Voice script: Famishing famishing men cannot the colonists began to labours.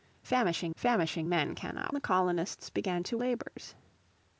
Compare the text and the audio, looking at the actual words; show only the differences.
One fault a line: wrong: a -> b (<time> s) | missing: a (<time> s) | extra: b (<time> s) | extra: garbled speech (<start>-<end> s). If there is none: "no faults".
no faults